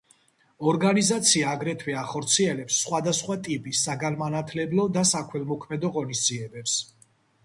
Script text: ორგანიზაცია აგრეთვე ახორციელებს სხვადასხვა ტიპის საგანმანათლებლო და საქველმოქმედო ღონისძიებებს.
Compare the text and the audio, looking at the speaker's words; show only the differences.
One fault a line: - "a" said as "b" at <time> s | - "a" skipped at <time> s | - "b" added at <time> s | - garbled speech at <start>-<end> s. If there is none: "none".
none